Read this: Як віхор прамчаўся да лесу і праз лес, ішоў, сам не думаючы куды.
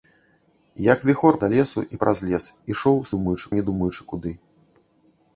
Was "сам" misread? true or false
true